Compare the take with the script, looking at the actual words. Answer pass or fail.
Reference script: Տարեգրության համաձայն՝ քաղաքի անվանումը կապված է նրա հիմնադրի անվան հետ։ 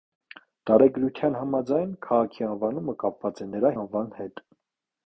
fail